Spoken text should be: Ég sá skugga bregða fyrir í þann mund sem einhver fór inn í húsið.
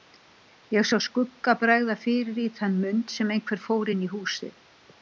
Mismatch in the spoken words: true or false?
false